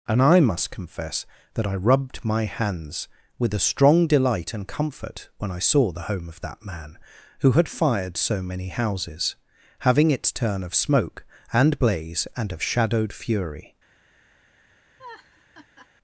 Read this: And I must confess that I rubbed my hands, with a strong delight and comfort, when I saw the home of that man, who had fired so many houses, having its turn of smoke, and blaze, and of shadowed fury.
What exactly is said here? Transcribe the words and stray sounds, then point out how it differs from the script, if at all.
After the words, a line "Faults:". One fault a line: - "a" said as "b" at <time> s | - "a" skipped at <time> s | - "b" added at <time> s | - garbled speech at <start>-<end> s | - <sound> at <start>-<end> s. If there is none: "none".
And I must confess that I rubbed my hands, with a strong delight and comfort, when I saw the home of that man, who had fired so many houses, having its turn of smoke, and blaze, and of shadowed fury.
Faults:
- laugh at 15.0-15.9 s